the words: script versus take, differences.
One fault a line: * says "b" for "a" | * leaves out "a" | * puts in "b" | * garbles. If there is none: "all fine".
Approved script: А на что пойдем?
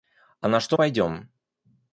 all fine